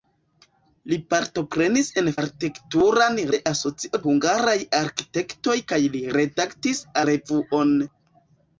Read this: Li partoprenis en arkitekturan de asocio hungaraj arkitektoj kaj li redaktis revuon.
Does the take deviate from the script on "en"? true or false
false